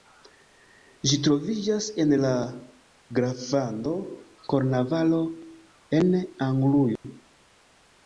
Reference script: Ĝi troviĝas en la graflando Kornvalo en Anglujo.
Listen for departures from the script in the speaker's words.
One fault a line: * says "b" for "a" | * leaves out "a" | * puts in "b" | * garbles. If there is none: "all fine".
all fine